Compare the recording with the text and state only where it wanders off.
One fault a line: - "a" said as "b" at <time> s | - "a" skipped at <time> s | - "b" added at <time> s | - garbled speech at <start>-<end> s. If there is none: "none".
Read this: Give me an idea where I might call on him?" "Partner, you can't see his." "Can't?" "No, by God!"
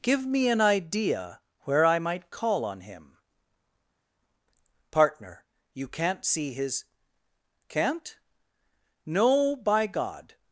none